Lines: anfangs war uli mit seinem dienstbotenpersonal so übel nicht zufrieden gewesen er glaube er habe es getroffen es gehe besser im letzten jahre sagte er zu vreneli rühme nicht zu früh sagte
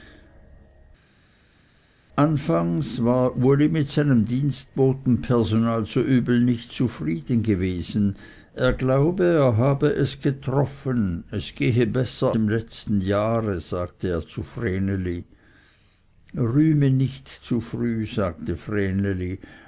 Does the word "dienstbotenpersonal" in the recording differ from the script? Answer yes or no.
no